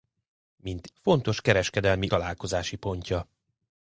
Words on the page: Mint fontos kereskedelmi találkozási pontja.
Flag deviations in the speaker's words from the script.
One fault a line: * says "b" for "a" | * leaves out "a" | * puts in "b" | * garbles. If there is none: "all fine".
all fine